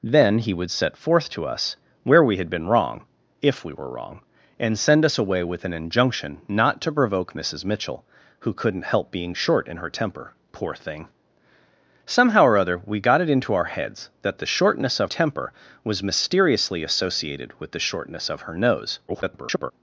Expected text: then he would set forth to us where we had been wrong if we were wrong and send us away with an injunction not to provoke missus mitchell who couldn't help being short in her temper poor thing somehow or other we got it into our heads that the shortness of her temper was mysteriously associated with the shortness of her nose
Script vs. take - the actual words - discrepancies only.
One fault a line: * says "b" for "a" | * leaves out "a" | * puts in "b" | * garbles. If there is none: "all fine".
* leaves out "her"
* garbles